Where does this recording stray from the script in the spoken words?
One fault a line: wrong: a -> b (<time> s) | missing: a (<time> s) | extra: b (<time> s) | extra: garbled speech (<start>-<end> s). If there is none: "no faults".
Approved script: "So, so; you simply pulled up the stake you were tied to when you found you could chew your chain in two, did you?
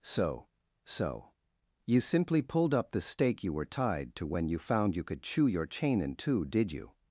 no faults